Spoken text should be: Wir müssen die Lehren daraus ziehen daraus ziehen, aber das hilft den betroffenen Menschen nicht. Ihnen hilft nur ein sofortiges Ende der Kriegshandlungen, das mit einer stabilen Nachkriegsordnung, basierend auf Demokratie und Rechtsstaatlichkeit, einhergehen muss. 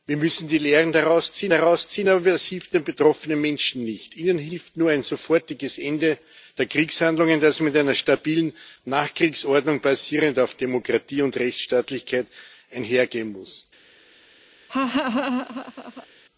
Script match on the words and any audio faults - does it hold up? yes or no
no